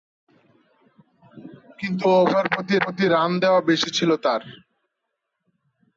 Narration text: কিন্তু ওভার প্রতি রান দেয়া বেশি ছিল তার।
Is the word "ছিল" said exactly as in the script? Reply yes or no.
yes